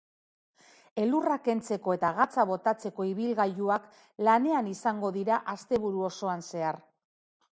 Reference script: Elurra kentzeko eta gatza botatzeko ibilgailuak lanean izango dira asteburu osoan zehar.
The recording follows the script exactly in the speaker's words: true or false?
true